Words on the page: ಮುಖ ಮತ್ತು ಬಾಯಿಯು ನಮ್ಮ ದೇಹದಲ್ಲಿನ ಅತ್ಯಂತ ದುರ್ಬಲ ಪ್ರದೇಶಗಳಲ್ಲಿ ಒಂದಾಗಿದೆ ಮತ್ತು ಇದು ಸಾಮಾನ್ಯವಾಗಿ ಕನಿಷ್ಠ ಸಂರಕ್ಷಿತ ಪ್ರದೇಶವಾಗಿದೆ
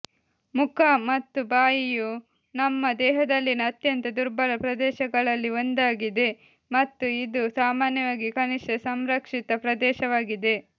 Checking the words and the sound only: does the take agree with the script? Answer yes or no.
yes